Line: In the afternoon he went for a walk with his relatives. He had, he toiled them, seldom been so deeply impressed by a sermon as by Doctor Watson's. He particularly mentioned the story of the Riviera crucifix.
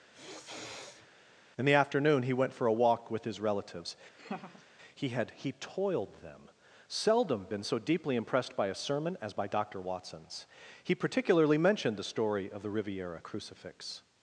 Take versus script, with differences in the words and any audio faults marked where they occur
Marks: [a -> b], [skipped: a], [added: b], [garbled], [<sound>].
[sniff] In the afternoon he went for a walk with his relatives. [laugh] He had, he toiled them, seldom been so deeply impressed by a sermon as by Doctor Watson's. He particularly mentioned the story of the Riviera crucifix.